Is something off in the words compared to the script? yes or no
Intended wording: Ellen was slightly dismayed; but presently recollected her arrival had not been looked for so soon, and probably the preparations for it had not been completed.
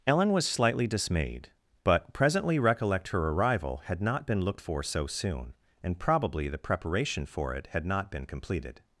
yes